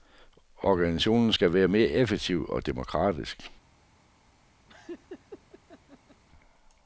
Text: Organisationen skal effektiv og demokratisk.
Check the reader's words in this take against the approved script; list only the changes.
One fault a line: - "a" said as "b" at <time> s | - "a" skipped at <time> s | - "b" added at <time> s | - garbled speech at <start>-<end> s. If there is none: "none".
- "være mere" added at 1.5 s